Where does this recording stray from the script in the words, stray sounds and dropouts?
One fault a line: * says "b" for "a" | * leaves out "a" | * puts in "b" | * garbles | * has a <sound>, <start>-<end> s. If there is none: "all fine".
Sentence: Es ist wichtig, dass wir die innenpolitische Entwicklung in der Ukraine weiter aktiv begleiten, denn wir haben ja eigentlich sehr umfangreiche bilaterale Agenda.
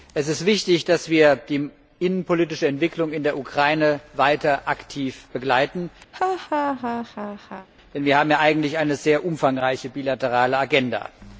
* has a laugh, 6.1-7.7 s
* puts in "eine"